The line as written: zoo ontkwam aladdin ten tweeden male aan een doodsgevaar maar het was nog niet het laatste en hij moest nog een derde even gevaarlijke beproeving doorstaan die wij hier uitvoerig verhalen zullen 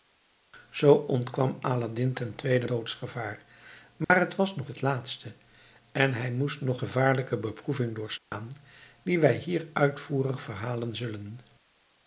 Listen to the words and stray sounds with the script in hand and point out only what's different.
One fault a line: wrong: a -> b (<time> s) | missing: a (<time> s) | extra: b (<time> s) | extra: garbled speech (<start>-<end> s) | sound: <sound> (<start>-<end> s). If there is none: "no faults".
missing: male aan een (2.7 s)
sound: dropout (4.0-4.1 s)
missing: niet (4.7 s)
missing: een derde even (6.8 s)
sound: dropout (8.2-8.3 s)